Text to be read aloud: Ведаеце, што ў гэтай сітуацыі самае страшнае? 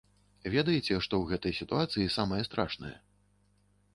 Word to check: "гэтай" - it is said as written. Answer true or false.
true